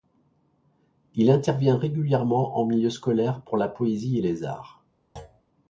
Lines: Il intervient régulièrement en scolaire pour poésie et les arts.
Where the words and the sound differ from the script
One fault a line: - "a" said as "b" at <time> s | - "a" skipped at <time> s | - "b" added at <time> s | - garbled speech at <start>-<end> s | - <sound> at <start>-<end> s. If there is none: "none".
- "milieu" added at 2.6 s
- "la" added at 3.5 s
- thud at 5.2-5.4 s